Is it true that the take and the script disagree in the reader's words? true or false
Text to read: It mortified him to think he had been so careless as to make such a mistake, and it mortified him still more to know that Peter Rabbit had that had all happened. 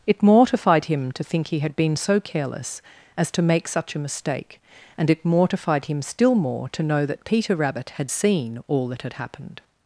true